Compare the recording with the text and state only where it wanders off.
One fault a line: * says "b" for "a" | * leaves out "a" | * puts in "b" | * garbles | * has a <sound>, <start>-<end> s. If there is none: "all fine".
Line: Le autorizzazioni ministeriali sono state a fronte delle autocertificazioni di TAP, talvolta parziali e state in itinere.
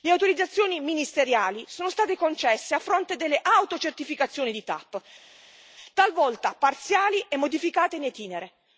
* puts in "concesse"
* says "modificate" for "state"